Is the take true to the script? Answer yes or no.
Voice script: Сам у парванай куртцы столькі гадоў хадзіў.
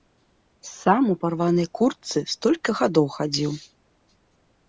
yes